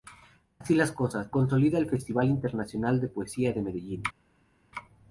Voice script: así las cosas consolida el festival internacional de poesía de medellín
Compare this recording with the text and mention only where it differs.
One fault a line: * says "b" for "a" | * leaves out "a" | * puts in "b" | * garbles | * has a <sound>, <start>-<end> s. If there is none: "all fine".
all fine